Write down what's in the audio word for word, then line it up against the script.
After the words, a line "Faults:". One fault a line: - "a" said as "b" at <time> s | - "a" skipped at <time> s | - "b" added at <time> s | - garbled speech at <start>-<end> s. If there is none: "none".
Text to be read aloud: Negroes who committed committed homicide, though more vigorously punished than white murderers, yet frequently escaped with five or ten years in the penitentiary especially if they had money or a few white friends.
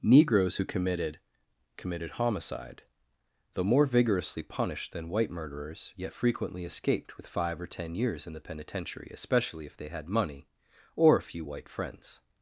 Negroes who committed committed homicide, though more vigorously punished than white murderers, yet frequently escaped with five or ten years in the penitentiary especially if they had money or a few white friends.
Faults:
none